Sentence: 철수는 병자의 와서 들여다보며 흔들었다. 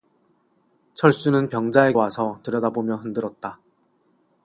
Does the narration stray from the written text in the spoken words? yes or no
no